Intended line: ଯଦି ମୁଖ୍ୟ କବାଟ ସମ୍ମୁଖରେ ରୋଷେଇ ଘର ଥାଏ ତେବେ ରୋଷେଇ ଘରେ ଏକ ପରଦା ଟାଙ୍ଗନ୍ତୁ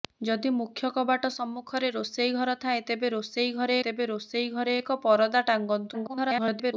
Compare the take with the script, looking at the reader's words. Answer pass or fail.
fail